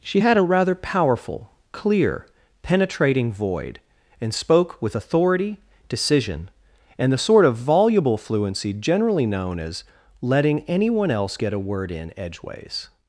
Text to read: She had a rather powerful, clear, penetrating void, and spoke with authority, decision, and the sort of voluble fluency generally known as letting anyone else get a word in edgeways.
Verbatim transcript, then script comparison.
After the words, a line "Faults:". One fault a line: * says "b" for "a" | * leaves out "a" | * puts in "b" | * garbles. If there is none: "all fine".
She had a rather powerful, clear, penetrating void, and spoke with authority, decision, and the sort of voluble fluency generally known as letting anyone else get a word in edgeways.
Faults:
all fine